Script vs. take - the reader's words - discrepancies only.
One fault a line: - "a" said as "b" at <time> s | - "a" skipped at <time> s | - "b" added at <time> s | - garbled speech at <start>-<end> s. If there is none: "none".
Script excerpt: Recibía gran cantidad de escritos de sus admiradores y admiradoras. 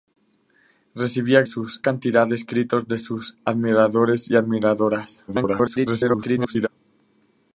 - "gran" said as "sus" at 1.4 s
- garbled speech at 5.3-6.7 s